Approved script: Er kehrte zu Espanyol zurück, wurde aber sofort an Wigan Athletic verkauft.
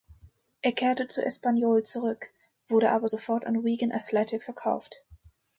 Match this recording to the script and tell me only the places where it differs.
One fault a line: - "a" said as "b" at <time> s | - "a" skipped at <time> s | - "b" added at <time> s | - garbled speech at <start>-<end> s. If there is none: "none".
none